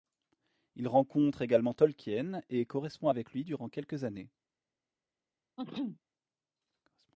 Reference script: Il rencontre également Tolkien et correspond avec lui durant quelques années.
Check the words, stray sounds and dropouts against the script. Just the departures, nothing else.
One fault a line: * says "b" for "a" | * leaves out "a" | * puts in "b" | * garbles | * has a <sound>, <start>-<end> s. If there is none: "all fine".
* has a sneeze, 5.6-6.0 s